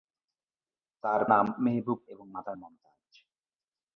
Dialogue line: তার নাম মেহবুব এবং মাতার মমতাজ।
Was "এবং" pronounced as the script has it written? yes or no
yes